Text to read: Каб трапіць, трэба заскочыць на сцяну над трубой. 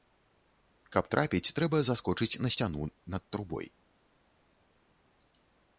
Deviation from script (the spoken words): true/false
false